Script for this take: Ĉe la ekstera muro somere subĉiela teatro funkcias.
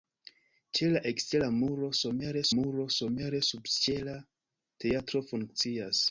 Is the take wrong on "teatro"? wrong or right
right